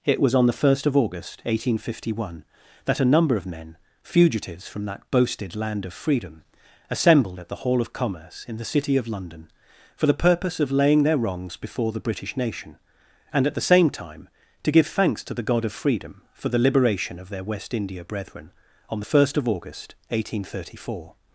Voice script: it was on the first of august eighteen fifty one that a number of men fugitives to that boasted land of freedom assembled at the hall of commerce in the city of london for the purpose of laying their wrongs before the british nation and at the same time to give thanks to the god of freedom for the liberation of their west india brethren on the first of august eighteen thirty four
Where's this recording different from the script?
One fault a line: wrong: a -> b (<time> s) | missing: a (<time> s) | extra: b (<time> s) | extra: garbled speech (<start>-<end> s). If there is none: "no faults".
wrong: to -> from (4.7 s)